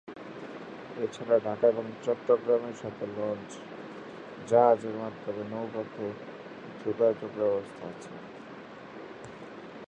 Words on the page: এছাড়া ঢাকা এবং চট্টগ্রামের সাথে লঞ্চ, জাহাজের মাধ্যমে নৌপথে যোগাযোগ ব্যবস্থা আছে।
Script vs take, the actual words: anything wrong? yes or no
no